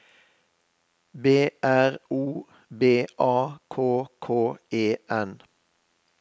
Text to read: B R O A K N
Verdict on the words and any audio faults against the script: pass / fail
fail